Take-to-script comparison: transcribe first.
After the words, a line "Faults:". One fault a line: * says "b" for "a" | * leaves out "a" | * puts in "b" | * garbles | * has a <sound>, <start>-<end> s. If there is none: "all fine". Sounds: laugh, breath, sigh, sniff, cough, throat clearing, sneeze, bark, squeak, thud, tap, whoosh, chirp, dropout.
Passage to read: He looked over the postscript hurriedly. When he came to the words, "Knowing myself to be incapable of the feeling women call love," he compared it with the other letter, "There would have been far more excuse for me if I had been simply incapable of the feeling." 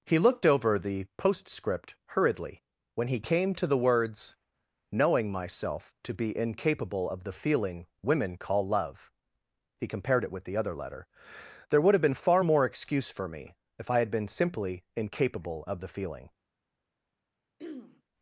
He looked over the postscript hurriedly. When he came to the words, "Knowing myself to be incapable of the feeling women call love," he compared it with the other letter, "There would have been far more excuse for me if I had been simply incapable of the feeling."
Faults:
* has a throat clearing, 17.6-18.0 s